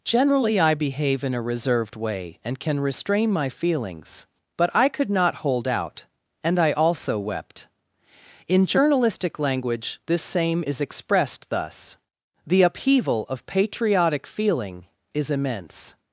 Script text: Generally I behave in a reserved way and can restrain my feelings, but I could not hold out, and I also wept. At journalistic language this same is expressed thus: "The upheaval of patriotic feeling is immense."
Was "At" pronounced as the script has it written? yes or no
no